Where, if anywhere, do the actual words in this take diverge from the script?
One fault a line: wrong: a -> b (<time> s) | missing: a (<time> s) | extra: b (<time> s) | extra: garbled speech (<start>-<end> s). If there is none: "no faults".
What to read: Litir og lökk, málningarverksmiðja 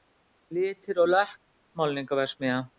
no faults